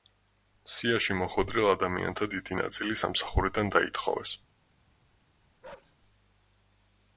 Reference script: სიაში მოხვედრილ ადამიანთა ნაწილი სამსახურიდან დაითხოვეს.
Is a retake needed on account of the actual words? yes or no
yes